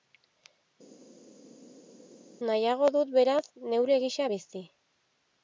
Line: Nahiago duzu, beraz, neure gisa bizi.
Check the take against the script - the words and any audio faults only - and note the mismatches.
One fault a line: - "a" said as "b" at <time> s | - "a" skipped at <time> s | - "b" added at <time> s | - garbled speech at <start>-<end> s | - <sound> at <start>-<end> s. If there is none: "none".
- "duzu" said as "dut" at 2.9 s